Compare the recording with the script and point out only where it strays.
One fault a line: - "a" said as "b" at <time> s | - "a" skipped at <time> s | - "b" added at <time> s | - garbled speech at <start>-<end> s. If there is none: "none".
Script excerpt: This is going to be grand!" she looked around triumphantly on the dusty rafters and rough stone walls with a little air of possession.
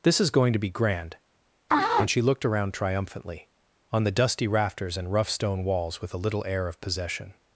- "and" added at 1.7 s